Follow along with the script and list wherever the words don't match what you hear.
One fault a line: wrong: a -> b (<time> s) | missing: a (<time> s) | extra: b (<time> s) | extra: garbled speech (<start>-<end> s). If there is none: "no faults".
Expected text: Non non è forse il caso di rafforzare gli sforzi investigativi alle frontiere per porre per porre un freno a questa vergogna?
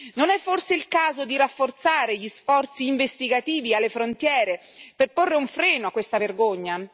missing: non (0.3 s)
missing: per porre (5.3 s)